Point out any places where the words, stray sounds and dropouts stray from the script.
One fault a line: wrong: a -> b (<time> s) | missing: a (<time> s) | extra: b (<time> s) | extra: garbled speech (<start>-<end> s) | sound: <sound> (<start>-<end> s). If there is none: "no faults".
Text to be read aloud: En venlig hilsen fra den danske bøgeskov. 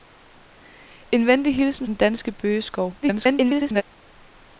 missing: fra (1.9 s)
extra: garbled speech (3.0-3.8 s)